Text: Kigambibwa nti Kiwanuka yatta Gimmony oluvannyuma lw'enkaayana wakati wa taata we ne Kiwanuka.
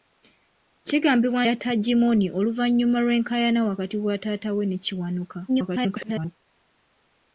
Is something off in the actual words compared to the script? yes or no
yes